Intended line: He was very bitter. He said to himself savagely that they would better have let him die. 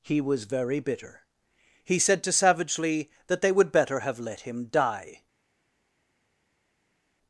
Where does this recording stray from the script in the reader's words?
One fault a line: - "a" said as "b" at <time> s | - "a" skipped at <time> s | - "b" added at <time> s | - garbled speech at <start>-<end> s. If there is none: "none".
- "himself" skipped at 2.3 s